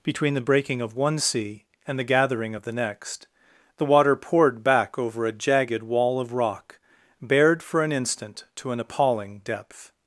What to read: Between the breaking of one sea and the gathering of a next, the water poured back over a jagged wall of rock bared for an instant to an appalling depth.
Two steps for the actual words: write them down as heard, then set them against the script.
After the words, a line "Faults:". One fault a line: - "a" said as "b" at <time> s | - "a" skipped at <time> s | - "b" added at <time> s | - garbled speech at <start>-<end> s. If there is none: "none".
Between the breaking of one sea and the gathering of the next, the water poured back over a jagged wall of rock bared for an instant to an appalling depth.
Faults:
- "a" said as "the" at 2.6 s